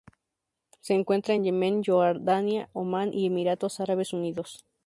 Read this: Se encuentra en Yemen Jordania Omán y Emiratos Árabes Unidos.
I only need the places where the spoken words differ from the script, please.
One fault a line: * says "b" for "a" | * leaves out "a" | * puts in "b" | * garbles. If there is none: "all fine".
all fine